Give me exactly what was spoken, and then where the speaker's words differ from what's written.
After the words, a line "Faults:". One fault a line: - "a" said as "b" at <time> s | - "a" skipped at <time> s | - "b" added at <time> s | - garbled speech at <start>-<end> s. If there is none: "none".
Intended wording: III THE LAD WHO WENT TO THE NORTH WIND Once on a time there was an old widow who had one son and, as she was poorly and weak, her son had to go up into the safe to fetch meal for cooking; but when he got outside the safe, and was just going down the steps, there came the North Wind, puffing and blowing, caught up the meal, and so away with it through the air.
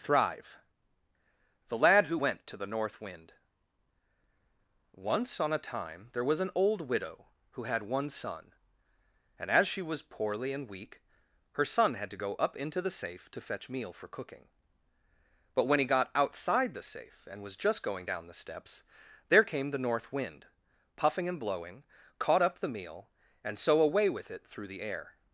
Thrive THE LAD WHO WENT TO THE NORTH WIND Once on a time there was an old widow who had one son and, as she was poorly and weak, her son had to go up into the safe to fetch meal for cooking; but when he got outside the safe, and was just going down the steps, there came the North Wind, puffing and blowing, caught up the meal, and so away with it through the air.
Faults:
- "III" said as "Thrive" at 0.0 s